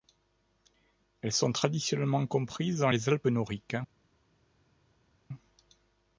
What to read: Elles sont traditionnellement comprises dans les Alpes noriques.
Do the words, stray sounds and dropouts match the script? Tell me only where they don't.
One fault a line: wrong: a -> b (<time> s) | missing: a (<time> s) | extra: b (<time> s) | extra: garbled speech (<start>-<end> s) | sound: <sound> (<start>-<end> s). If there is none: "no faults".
no faults